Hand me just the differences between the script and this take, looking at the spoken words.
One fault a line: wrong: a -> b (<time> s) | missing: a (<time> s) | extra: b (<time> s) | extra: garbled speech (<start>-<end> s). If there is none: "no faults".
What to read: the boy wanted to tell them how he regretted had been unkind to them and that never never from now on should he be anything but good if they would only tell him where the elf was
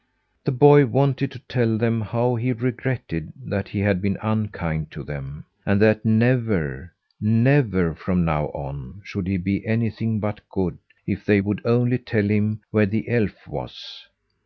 extra: that he (3.5 s)